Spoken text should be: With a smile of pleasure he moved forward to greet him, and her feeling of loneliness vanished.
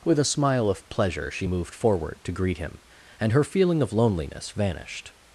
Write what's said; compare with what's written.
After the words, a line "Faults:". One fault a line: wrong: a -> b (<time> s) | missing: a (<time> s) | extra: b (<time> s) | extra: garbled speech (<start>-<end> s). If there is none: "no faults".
With a smile of pleasure she moved forward to greet him, and her feeling of loneliness vanished.
Faults:
wrong: he -> she (1.3 s)